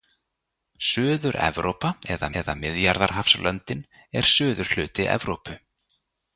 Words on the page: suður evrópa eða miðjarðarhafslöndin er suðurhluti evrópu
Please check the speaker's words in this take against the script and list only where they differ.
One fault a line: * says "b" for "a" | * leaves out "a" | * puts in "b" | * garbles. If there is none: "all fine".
* puts in "eða"